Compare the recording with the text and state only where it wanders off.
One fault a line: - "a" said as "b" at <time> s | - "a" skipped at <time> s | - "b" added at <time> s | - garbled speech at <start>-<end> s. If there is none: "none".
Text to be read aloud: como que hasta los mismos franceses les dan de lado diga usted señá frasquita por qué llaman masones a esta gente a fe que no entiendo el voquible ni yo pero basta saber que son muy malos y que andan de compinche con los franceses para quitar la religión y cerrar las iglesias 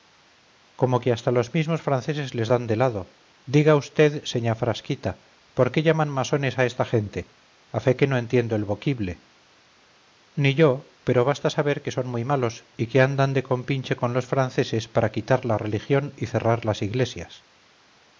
none